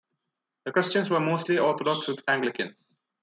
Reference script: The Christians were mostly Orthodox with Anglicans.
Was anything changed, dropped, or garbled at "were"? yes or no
no